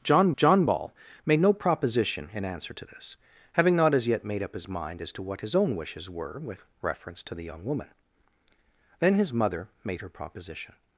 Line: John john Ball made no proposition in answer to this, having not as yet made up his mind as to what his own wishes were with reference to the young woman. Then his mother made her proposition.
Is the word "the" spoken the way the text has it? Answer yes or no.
yes